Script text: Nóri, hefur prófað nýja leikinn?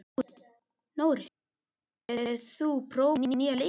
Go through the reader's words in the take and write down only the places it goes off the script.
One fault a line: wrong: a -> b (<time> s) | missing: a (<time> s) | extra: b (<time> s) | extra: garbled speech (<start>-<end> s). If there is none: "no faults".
extra: þú (2.5 s)